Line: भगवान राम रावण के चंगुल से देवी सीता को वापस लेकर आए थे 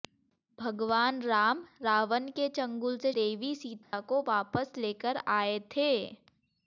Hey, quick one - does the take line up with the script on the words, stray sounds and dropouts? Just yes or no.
no